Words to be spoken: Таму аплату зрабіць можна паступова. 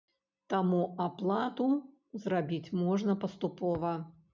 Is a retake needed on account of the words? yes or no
no